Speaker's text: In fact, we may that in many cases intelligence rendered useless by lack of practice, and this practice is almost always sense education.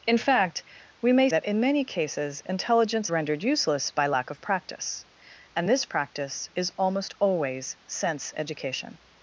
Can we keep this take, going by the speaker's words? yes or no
yes